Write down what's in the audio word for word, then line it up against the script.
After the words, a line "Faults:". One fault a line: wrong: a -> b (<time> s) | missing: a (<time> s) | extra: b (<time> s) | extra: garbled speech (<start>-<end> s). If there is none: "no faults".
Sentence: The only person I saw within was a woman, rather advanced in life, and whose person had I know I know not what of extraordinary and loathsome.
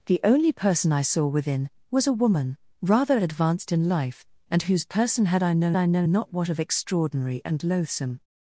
The only person I saw within was a woman, rather advanced in life, and whose person had I know I know not what of extraordinary and loathsome.
Faults:
no faults